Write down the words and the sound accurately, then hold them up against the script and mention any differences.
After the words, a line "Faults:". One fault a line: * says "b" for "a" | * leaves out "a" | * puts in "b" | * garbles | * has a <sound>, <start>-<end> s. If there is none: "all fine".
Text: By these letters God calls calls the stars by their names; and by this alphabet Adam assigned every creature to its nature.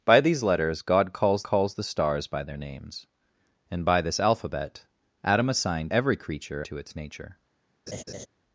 By these letters God calls calls the stars by their names; and by this alphabet Adam assigned every creature to its nature.
Faults:
* has a laugh, 7.9-8.3 s